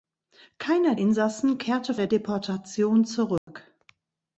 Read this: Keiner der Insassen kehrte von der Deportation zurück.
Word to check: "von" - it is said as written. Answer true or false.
false